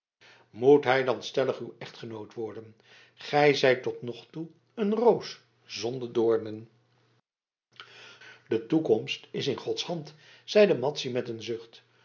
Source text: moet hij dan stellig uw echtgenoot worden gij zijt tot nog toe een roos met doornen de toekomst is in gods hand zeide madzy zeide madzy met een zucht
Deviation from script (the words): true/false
true